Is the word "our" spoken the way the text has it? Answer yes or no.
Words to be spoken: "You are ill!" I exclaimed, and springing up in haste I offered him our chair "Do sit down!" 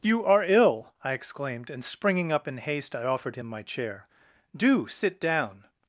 no